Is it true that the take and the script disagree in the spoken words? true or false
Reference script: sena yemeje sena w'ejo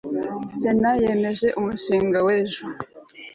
true